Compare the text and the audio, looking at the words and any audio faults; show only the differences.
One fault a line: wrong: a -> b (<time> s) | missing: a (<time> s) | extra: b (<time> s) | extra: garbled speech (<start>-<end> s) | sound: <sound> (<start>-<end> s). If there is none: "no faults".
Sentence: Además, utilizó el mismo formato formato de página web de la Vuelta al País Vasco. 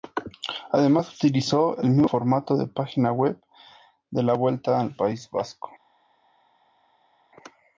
missing: formato (2.6 s)